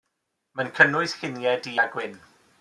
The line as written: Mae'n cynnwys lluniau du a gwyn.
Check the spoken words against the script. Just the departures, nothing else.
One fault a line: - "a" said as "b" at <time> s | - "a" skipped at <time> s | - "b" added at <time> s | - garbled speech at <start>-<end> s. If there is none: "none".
none